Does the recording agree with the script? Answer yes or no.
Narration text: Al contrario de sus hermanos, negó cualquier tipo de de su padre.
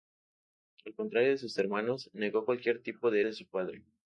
yes